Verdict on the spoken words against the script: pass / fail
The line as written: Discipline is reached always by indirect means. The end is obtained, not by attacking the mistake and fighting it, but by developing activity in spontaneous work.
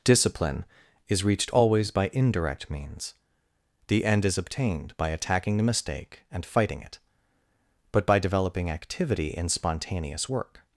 fail